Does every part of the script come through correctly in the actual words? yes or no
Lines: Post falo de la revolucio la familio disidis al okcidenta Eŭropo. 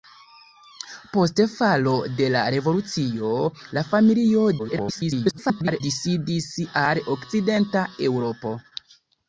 no